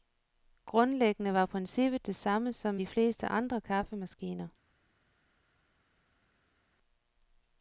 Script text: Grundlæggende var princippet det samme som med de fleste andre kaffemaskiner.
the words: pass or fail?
fail